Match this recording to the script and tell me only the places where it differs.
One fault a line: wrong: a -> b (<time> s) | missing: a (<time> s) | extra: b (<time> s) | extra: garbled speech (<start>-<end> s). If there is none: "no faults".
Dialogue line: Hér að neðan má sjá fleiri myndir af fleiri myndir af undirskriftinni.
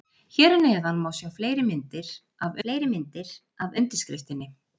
no faults